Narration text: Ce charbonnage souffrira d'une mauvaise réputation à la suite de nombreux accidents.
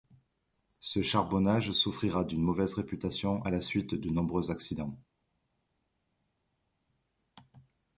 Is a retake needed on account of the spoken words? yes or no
no